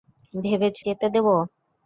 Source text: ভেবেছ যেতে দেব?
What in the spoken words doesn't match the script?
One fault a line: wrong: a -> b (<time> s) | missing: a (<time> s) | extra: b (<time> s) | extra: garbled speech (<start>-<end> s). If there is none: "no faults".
no faults